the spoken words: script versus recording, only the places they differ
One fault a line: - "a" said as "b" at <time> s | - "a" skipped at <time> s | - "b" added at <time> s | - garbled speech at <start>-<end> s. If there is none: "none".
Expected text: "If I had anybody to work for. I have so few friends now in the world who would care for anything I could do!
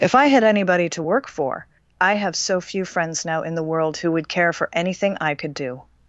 none